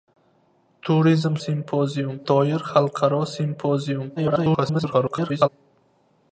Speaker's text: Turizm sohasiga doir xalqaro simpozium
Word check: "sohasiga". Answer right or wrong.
wrong